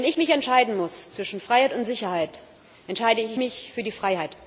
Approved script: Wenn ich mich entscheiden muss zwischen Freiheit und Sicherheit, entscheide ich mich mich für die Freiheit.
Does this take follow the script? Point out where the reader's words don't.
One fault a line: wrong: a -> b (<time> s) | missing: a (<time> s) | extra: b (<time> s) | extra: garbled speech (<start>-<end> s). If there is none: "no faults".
missing: mich (3.7 s)